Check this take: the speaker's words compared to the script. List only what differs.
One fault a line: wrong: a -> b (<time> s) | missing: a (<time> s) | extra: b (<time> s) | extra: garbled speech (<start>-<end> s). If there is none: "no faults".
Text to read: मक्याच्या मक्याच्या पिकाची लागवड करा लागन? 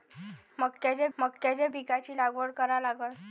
no faults